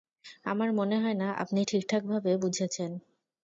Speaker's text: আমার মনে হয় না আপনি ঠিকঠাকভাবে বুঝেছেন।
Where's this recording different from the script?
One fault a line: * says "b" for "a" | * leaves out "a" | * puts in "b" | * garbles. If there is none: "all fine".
all fine